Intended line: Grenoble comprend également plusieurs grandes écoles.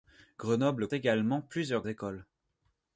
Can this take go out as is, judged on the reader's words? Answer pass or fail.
fail